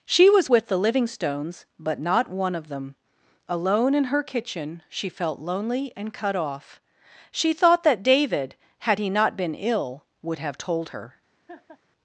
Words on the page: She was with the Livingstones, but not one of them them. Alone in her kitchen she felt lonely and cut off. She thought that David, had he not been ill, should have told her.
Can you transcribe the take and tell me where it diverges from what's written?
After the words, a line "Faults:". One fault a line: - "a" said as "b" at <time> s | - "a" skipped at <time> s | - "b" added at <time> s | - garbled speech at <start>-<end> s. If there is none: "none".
She was with the Livingstones, but not one of them. Alone in her kitchen she felt lonely and cut off. She thought that David, had he not been ill, would have told her.
Faults:
- "them" skipped at 2.9 s
- "should" said as "would" at 10.2 s